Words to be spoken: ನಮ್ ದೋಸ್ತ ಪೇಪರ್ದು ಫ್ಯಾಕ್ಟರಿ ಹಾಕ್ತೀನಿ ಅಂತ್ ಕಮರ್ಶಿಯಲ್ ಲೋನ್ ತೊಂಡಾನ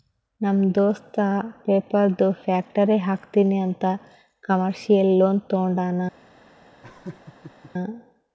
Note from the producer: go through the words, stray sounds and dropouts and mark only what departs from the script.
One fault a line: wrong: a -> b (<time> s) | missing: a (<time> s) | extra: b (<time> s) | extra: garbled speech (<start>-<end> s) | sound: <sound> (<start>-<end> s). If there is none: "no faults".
sound: laugh (6.8-7.7 s)